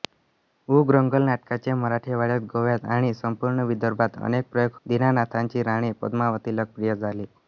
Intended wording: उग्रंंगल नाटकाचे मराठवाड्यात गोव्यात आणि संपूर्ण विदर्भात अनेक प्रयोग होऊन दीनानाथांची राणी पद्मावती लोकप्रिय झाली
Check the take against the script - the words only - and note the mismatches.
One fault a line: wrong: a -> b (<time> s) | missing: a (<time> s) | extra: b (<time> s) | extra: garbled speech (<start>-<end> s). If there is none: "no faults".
missing: होऊन (4.8 s)